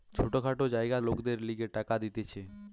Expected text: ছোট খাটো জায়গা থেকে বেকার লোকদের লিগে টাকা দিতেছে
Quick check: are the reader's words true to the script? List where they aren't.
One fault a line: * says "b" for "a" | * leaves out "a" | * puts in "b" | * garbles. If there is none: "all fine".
* leaves out "থেকে বেকার"